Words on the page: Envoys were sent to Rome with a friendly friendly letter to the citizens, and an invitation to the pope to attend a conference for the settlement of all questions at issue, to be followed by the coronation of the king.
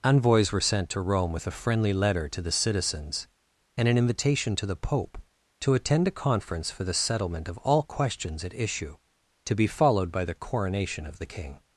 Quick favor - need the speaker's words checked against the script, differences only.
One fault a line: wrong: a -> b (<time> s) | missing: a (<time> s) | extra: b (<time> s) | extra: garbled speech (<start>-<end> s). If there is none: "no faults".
missing: friendly (1.9 s)